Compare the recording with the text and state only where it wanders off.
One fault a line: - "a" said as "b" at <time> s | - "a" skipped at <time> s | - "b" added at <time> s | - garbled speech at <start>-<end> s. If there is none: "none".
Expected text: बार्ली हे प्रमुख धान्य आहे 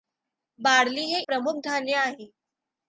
none